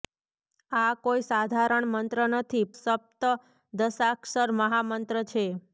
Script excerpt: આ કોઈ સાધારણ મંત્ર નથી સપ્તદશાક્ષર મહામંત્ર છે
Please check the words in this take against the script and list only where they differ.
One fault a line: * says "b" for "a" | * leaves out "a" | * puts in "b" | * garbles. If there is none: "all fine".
all fine